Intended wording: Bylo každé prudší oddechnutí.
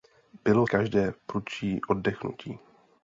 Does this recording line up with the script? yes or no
yes